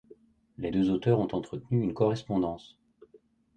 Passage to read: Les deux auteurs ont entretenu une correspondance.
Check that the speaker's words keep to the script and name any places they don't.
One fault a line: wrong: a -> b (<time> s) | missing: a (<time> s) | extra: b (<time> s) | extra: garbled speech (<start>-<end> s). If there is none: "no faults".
no faults